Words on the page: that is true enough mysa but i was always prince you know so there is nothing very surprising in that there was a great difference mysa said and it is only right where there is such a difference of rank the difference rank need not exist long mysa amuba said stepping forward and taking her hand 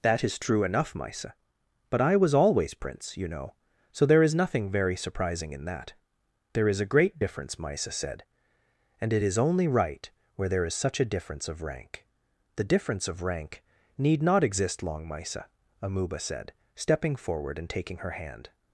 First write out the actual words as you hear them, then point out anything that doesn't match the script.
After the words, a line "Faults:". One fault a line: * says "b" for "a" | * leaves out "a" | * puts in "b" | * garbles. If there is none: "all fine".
that is true enough mysa but i was always prince you know so there is nothing very surprising in that there is a great difference mysa said and it is only right where there is such a difference of rank the difference of rank need not exist long mysa amuba said stepping forward and taking her hand
Faults:
* says "is" for "was"
* puts in "of"